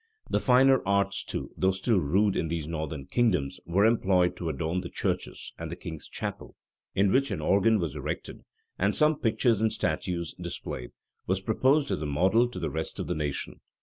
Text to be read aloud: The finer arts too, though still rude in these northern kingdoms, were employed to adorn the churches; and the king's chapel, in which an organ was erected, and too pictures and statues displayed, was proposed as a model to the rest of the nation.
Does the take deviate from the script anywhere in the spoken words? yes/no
yes